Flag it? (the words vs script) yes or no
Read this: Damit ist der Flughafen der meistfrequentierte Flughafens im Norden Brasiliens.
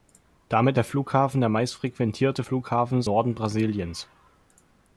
yes